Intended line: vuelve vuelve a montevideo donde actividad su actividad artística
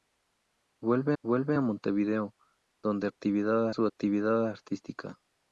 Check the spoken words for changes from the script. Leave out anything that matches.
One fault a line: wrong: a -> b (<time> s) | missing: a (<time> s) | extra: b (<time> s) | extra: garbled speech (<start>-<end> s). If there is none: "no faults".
no faults